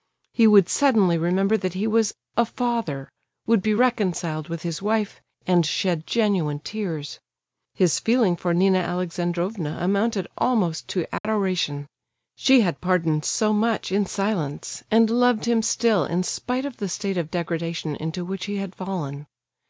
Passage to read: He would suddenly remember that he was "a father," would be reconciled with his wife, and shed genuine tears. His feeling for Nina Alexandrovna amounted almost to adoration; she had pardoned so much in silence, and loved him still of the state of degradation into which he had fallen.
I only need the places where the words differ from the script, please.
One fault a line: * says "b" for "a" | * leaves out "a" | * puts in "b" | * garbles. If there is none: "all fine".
* puts in "in spite"